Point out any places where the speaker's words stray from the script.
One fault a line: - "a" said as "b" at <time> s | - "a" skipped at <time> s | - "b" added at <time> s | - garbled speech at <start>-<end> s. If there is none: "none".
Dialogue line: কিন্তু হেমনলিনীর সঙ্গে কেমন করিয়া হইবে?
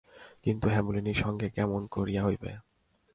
none